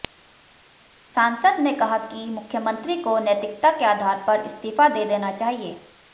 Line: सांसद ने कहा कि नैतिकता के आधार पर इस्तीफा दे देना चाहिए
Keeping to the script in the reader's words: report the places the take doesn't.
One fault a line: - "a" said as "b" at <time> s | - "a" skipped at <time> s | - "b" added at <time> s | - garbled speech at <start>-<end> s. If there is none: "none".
- "मुख्यमंत्री को" added at 2.3 s